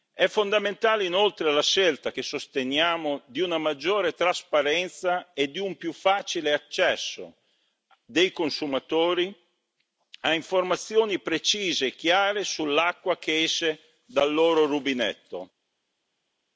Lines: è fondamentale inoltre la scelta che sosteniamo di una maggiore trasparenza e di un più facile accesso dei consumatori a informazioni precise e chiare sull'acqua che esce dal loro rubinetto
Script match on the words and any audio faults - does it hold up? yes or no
yes